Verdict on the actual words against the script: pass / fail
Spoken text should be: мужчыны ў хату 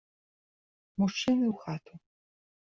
pass